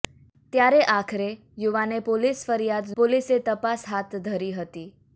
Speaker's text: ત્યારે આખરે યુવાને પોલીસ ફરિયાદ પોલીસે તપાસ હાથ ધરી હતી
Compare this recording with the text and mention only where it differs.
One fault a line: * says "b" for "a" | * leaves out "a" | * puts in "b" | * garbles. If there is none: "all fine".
all fine